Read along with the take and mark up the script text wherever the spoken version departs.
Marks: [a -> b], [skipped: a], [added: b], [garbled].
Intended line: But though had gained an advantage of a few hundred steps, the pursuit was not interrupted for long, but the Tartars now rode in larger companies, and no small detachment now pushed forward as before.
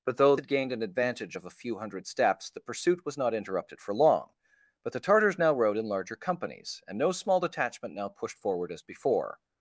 But though had gained an advantage of a few hundred steps, the pursuit was not interrupted for long, but the Tartars now rode in larger companies, and no small detachment now pushed forward as before.